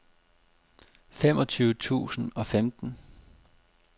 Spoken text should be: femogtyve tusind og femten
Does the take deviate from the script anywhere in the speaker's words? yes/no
no